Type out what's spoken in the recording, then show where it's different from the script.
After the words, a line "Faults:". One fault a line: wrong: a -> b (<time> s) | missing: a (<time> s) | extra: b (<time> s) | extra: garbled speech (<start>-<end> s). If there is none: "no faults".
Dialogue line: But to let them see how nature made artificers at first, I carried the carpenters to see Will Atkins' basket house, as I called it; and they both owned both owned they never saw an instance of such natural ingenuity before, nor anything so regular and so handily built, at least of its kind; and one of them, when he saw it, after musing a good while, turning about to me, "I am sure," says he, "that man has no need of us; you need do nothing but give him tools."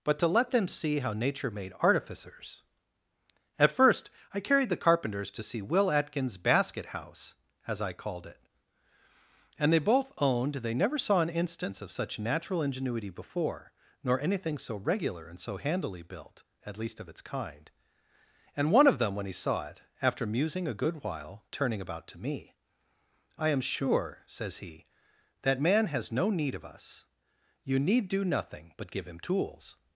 But to let them see how nature made artificers at first, I carried the carpenters to see Will Atkins' basket house, as I called it; and they both owned they never saw an instance of such natural ingenuity before, nor anything so regular and so handily built, at least of its kind; and one of them, when he saw it, after musing a good while, turning about to me, "I am sure," says he, "that man has no need of us; you need do nothing but give him tools."
Faults:
missing: both owned (10.6 s)